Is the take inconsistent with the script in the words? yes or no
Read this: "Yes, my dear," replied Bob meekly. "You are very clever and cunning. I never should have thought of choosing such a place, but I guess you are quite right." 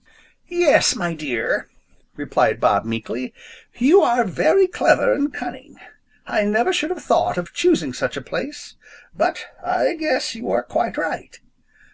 no